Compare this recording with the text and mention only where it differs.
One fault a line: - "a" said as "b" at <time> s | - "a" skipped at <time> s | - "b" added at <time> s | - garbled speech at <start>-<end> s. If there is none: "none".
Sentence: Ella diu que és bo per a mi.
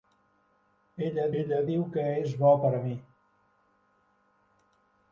- "ella" added at 1.4 s